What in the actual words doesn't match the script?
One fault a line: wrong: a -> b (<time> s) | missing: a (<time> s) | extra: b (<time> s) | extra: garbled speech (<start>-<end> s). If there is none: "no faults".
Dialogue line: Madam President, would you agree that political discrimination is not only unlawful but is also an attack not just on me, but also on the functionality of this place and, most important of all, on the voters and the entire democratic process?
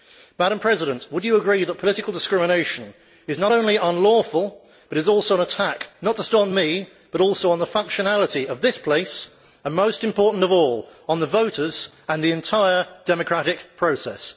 no faults